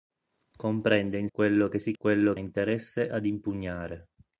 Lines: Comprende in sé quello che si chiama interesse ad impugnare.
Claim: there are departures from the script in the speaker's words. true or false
true